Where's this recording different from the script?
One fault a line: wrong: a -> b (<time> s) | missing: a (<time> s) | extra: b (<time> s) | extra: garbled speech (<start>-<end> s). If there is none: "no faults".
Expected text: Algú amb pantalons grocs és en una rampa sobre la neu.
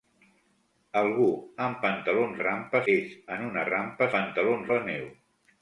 wrong: grocs -> rampa (2.4 s)
wrong: sobre -> pantalons (4.1 s)